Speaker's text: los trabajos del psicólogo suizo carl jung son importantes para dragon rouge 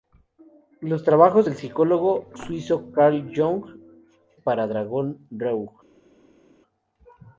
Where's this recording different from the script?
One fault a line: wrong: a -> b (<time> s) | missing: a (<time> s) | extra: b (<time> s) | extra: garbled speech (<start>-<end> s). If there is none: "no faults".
missing: son importantes (3.6 s)